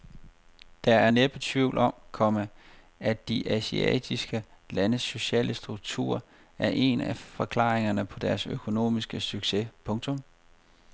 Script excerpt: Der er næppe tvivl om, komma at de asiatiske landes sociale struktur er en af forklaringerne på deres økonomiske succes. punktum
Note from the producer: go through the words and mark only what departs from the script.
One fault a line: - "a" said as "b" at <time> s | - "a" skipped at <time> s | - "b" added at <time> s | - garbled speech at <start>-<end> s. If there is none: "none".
none